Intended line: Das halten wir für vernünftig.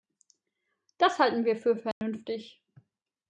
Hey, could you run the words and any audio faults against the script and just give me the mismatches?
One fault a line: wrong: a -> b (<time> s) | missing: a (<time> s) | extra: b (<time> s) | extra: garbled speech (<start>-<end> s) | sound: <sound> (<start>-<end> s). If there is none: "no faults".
sound: dropout (1.9-2.0 s)